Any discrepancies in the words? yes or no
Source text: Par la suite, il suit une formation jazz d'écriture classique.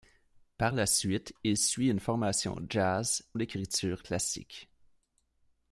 no